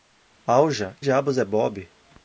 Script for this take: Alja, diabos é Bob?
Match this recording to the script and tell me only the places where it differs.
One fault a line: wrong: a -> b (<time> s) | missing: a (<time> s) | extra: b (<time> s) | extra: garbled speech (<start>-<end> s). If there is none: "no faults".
no faults